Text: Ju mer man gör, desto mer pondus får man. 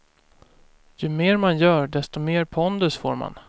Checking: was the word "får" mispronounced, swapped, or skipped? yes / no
no